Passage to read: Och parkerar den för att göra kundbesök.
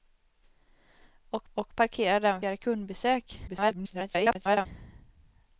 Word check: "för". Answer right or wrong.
wrong